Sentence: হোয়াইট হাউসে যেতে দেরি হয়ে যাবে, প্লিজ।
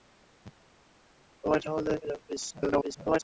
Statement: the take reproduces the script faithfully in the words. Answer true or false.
false